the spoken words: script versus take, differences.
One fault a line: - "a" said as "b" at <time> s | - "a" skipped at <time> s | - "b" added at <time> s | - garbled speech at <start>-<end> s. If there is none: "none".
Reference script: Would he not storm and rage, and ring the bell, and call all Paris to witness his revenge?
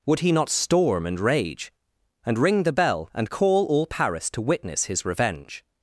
none